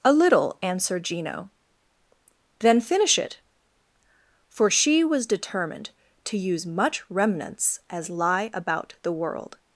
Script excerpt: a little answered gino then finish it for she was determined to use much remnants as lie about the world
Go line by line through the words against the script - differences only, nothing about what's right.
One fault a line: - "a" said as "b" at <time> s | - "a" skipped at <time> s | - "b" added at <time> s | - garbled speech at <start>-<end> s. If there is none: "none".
none